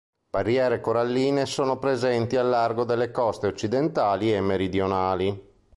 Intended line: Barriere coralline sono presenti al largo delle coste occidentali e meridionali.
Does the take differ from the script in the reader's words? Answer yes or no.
no